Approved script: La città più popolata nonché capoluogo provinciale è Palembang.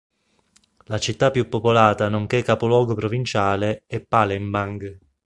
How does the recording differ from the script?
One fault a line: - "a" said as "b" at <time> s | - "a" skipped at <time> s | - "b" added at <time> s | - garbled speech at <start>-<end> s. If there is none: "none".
none